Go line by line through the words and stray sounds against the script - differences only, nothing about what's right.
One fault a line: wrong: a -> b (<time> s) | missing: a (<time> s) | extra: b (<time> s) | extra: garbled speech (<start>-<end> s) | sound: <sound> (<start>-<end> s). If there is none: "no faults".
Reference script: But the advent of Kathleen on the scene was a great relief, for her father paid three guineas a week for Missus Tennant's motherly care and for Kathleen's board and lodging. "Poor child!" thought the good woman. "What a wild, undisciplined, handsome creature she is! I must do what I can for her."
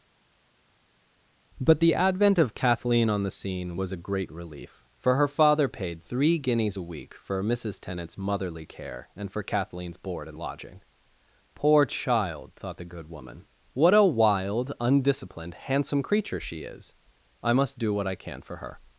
no faults